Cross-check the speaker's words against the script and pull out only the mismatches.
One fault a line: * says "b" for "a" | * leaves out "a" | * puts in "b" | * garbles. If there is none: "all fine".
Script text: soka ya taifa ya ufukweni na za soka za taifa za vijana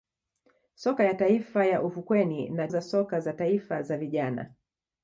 all fine